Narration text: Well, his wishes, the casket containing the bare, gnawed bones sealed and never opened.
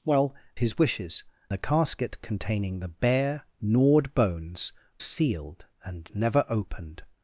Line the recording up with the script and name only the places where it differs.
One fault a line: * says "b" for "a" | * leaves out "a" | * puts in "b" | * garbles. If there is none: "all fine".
all fine